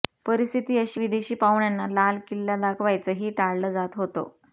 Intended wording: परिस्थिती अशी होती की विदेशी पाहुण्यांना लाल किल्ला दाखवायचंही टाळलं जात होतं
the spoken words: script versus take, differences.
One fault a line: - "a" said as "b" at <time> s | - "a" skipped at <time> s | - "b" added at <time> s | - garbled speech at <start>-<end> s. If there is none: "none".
- "होती की" skipped at 1.0 s